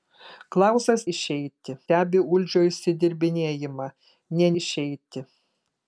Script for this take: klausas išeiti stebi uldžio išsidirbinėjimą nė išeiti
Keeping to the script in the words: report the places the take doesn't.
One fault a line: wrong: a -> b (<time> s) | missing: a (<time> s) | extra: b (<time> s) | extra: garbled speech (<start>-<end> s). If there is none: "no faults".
no faults